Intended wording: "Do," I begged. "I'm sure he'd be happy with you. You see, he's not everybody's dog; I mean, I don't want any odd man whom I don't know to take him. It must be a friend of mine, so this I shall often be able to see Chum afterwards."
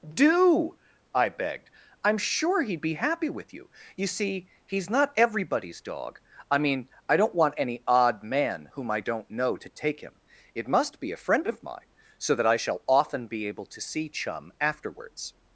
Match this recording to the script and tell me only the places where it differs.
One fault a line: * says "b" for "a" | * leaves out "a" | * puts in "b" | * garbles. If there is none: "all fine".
* says "that" for "this"